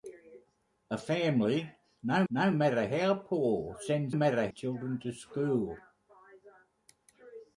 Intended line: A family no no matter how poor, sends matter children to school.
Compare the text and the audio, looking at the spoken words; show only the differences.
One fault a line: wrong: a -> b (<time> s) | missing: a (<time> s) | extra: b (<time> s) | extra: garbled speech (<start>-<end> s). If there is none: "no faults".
no faults